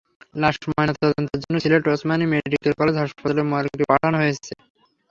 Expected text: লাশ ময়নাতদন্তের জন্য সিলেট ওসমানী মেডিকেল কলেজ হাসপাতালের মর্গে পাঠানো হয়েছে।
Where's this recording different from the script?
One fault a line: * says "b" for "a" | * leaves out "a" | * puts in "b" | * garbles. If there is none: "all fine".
all fine